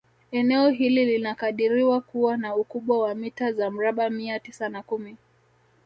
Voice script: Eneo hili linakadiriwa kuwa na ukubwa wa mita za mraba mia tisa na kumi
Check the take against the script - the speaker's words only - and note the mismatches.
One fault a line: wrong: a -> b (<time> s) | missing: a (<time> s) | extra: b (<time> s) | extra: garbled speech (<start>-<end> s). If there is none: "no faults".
no faults